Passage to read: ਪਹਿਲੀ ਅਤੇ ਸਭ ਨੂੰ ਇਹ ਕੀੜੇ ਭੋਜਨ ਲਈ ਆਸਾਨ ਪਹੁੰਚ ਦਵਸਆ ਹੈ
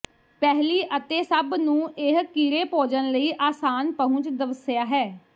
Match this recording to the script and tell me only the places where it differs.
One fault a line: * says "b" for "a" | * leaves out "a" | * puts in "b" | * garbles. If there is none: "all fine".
all fine